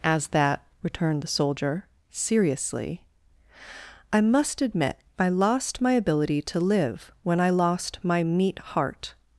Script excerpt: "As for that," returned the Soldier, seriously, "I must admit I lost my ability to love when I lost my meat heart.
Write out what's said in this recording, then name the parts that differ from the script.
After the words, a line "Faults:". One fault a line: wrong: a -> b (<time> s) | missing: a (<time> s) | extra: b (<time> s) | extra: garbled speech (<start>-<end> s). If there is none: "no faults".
"As that," returned the Soldier, seriously, "I must admit I lost my ability to live when I lost my meat heart.
Faults:
missing: for (0.3 s)
wrong: love -> live (6.6 s)